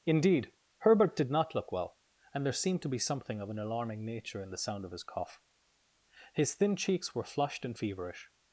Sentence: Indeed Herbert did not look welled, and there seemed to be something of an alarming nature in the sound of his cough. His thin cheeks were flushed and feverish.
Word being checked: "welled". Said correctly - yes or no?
no